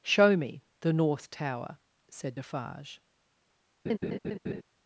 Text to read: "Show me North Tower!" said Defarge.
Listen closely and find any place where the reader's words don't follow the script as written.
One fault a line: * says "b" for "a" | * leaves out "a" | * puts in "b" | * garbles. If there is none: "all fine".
* puts in "the"